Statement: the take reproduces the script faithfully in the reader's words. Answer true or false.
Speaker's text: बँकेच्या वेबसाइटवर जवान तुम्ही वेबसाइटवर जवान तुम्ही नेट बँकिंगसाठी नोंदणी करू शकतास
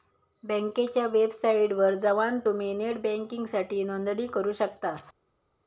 false